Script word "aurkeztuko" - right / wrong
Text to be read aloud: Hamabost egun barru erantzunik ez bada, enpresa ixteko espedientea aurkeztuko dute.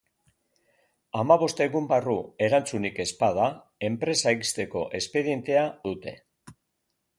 wrong